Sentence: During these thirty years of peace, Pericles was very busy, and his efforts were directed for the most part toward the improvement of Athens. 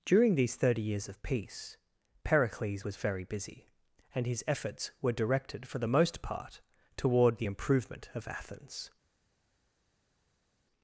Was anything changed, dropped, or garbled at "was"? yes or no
no